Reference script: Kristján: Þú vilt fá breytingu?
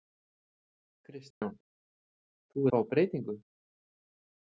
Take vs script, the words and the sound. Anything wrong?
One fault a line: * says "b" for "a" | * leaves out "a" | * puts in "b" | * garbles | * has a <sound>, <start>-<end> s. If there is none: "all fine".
* has a dropout, 1.3-1.4 s
* leaves out "vilt"